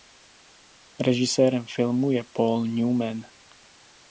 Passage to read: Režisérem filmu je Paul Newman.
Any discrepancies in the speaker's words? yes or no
no